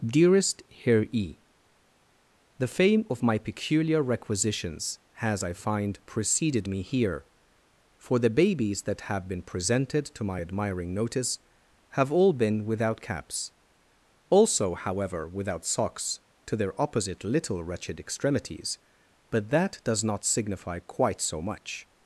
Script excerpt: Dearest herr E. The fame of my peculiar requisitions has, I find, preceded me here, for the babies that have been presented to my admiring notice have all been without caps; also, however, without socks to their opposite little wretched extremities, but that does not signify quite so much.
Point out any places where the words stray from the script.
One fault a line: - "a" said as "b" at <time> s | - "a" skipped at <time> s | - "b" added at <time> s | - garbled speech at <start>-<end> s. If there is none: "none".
none